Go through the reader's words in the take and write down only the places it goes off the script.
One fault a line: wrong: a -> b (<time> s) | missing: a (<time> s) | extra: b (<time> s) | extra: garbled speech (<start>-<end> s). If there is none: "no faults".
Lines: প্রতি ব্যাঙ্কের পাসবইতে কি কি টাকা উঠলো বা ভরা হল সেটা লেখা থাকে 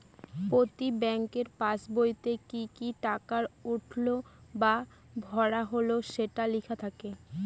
no faults